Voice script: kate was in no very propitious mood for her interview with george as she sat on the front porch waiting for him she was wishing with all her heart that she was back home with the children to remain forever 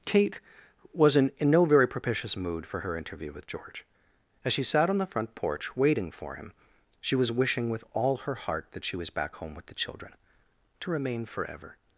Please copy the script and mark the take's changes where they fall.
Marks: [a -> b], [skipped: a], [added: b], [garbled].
kate was in [added: in] no very propitious mood for her interview with george as she sat on the front porch waiting for him she was wishing with all her heart that she was back home with the children to remain forever